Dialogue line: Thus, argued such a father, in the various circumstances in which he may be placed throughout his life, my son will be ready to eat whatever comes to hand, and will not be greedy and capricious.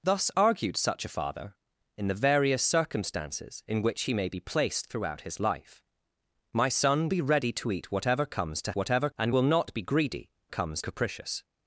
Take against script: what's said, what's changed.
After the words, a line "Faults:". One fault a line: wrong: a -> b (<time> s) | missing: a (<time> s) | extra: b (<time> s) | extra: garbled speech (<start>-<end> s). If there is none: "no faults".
Thus, argued such a father, in the various circumstances in which he may be placed throughout his life, my son be ready to eat whatever comes to whatever, and will not be greedy comes capricious.
Faults:
missing: will (7.1 s)
wrong: hand -> whatever (8.7 s)
wrong: and -> comes (10.5 s)